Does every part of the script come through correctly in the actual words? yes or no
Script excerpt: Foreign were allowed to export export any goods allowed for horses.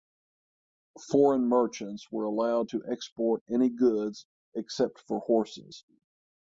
no